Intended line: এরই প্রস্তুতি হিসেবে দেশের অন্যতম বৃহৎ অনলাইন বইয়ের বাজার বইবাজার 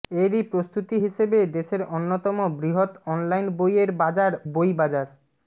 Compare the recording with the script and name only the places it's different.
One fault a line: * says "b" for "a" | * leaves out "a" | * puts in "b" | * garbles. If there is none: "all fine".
all fine